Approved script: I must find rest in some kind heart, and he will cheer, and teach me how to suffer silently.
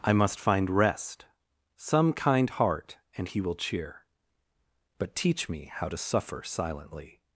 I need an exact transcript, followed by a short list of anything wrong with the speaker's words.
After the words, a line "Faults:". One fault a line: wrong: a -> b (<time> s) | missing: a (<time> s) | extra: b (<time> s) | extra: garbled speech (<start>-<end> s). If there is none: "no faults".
I must find rest some kind heart, and he will cheer, but teach me how to suffer silently.
Faults:
missing: in (1.2 s)
wrong: and -> but (5.0 s)